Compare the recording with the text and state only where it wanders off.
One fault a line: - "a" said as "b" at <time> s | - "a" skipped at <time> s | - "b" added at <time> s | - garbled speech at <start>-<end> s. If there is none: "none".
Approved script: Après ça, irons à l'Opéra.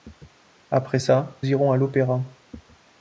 none